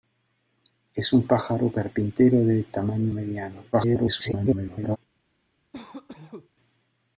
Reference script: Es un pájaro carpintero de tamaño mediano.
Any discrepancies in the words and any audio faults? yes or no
yes